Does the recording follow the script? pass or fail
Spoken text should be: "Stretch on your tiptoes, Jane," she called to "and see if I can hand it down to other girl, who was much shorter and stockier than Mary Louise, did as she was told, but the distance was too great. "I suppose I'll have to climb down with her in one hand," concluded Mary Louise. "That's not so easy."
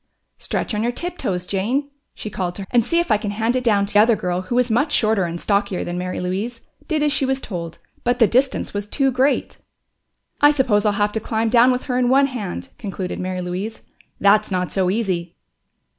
pass